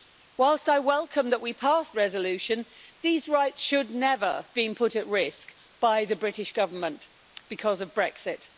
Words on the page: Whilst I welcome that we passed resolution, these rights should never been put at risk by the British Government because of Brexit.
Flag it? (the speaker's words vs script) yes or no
no